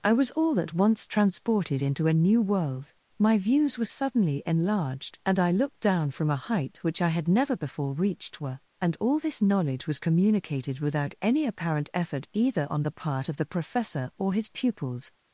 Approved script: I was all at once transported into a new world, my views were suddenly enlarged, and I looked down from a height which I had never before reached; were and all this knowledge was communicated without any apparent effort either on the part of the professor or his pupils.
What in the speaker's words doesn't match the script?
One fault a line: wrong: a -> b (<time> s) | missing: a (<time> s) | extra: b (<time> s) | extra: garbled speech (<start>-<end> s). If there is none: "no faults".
no faults